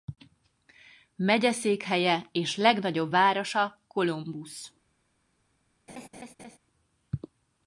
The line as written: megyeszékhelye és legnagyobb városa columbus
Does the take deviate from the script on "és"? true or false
false